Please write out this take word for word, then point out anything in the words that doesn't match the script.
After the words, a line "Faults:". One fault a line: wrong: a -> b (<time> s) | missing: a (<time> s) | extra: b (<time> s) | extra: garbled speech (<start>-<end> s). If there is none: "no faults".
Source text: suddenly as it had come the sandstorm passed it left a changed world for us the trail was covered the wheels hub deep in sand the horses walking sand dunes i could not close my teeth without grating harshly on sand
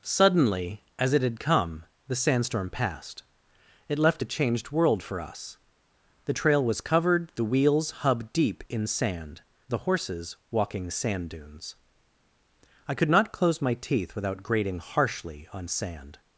suddenly as it had come the sandstorm passed it left a changed world for us the trail was covered the wheels hub deep in sand the horses walking sand dunes i could not close my teeth without grating harshly on sand
Faults:
no faults